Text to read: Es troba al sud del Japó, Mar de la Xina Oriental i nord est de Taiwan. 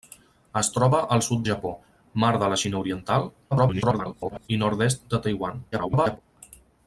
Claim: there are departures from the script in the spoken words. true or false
true